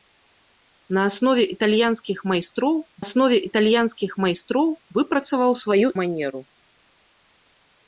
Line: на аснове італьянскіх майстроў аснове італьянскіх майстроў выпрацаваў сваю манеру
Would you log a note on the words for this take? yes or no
no